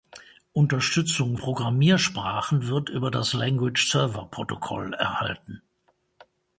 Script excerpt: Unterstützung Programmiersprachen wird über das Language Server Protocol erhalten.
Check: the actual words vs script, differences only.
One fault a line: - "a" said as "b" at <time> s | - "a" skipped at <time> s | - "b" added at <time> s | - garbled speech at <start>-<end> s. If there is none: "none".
none